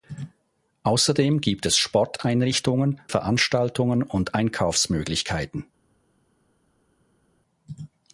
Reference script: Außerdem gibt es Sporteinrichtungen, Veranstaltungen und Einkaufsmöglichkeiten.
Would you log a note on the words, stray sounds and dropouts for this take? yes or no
no